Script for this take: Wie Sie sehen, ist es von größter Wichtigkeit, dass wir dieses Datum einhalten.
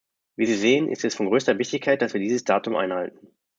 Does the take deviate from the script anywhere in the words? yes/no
no